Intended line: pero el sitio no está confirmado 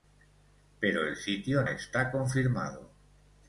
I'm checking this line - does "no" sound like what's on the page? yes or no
no